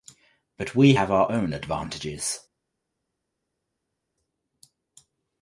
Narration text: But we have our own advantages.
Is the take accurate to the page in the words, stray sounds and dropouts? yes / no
yes